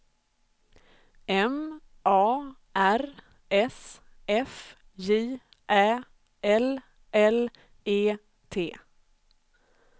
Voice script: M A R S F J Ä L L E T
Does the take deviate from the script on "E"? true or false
false